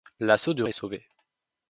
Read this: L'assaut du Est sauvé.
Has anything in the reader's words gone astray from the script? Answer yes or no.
no